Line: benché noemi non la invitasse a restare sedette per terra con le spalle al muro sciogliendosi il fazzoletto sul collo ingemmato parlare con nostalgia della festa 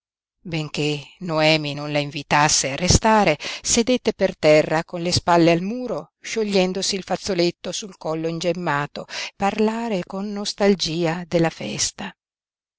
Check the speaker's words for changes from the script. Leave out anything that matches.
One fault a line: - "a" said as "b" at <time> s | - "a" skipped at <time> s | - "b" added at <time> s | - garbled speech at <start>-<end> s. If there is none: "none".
none